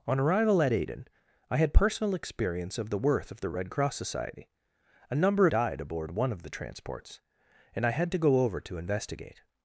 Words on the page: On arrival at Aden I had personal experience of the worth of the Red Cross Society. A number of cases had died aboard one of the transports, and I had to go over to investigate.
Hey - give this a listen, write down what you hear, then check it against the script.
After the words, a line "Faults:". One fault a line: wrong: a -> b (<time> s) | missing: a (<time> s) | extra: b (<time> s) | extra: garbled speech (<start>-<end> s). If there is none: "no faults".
On arrival at Aden I had personal experience of the worth of the Red Cross Society. A number died aboard one of the transports, and I had to go over to investigate.
Faults:
missing: of cases had (5.5 s)